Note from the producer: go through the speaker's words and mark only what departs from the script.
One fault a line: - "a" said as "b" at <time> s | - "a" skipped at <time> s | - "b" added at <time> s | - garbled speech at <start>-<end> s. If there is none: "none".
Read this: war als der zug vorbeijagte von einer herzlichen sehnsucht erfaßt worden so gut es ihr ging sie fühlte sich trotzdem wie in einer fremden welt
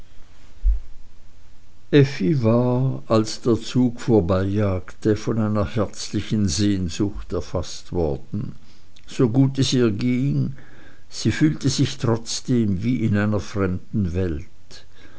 none